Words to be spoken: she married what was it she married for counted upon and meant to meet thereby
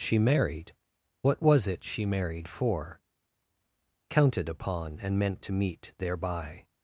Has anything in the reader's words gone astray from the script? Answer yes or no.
no